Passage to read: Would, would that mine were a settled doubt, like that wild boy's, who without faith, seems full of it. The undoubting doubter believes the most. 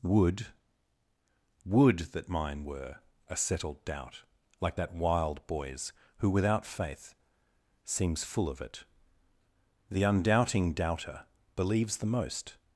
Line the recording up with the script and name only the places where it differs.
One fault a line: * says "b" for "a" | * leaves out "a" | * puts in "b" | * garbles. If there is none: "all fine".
all fine